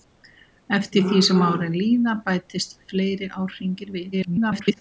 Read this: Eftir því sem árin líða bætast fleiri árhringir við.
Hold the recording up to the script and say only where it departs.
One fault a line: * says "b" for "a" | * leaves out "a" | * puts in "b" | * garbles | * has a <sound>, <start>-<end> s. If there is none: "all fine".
* garbles